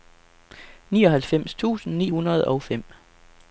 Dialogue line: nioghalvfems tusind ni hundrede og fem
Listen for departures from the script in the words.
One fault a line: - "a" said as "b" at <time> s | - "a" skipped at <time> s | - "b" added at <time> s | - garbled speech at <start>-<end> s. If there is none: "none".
none